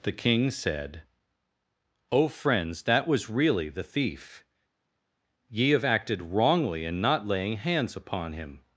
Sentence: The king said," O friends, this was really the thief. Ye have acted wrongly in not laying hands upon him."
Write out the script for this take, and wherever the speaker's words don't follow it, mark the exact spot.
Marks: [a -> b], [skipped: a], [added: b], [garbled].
The king said," O friends, [this -> that] was really the thief. Ye have acted wrongly in not laying hands upon him."